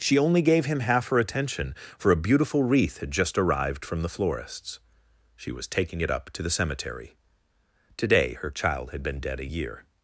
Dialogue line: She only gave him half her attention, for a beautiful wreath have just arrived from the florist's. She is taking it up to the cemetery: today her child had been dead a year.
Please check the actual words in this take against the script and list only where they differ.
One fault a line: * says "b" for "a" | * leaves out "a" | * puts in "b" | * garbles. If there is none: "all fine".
* says "had" for "have"
* says "was" for "is"